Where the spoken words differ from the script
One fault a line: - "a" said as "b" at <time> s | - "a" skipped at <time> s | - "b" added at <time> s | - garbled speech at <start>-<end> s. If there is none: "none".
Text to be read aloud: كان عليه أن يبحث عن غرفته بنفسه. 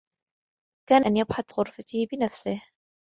- "عليه" skipped at 1.1 s
- "عن" skipped at 1.5 s